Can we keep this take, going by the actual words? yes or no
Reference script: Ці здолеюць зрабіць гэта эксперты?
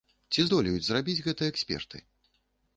yes